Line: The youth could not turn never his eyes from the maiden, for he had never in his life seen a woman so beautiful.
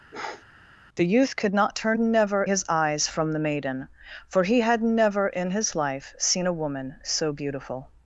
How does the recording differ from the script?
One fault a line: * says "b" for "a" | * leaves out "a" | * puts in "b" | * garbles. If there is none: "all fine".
all fine